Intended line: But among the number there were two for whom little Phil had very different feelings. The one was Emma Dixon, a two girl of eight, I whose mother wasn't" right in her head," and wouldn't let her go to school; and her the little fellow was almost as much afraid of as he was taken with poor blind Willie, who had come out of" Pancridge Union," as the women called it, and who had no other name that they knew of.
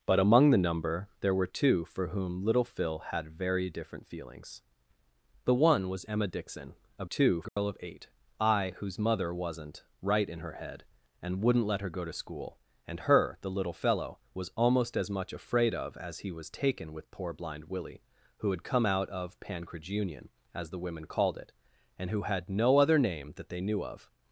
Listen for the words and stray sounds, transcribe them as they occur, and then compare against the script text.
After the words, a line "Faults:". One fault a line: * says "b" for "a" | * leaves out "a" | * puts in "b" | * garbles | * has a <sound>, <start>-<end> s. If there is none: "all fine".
But among the number there were two for whom little Phil had very different feelings. The one was Emma Dixon, a two girl of eight, I whose mother wasn't" right in her head," and wouldn't let her go to school; and her the little fellow was almost as much afraid of as he was taken with poor blind Willie, who had come out of" Pancridge Union," as the women called it, and who had no other name that they knew of.
Faults:
* has a dropout, 7.5-7.6 s